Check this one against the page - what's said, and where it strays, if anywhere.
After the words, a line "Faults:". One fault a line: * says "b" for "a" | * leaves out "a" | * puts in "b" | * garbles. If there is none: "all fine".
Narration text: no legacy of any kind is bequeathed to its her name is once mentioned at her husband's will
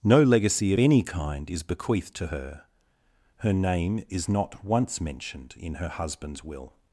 no legacy of any kind is bequeathed to her her name is not once mentioned in her husband's will
Faults:
* says "her" for "its"
* puts in "not"
* says "in" for "at"